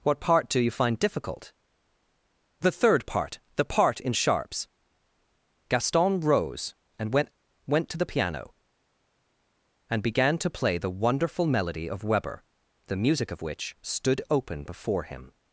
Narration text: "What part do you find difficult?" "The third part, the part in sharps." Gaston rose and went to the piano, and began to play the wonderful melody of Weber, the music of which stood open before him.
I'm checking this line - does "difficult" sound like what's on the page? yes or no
yes